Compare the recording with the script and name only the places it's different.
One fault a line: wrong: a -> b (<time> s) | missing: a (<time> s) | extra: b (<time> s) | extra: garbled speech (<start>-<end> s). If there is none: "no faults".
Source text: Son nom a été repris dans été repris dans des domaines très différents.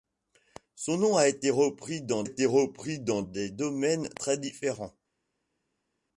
no faults